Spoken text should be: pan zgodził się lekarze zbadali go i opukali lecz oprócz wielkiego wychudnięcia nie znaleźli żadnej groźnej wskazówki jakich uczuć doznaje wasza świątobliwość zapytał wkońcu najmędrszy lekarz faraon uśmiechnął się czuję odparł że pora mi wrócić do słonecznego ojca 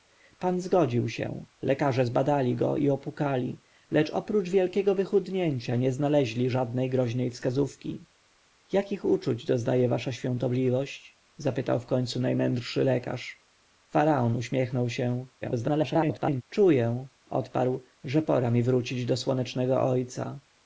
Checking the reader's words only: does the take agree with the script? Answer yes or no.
no